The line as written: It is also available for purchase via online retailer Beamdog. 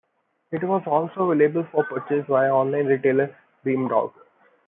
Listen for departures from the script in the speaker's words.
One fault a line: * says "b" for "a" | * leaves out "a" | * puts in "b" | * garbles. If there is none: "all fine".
* says "was" for "is"